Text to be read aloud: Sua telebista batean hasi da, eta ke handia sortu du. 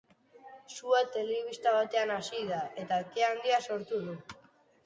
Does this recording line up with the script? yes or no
yes